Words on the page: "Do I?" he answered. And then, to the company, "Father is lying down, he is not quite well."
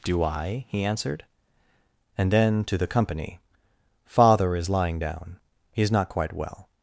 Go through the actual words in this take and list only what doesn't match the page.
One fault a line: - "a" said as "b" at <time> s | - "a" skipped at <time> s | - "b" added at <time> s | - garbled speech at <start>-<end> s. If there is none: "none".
none